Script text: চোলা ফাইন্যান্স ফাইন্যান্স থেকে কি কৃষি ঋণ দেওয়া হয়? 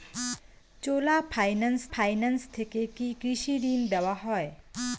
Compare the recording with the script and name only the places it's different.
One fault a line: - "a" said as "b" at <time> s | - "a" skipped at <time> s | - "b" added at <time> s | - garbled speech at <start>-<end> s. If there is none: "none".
none